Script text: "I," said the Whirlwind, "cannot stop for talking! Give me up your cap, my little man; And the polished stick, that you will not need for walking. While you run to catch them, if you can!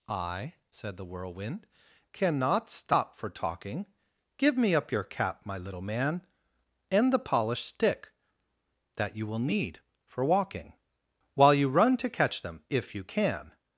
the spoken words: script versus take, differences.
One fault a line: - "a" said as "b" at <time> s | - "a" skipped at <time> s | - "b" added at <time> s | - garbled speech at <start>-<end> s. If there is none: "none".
- "not" skipped at 9.4 s